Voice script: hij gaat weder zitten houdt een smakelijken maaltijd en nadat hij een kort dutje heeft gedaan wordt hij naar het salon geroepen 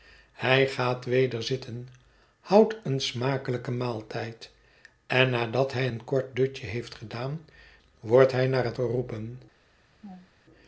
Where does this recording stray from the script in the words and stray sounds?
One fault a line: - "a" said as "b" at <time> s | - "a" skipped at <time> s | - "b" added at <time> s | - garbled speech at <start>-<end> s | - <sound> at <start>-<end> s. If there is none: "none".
- "salon" skipped at 8.8 s
- laugh at 10.0-10.3 s